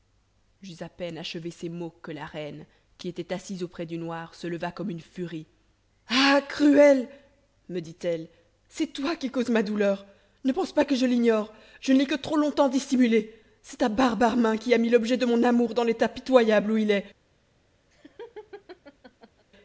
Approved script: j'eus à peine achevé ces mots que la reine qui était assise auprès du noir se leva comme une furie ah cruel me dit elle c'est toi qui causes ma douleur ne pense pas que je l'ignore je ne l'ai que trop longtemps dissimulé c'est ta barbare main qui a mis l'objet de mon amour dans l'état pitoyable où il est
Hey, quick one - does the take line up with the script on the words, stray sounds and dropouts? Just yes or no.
no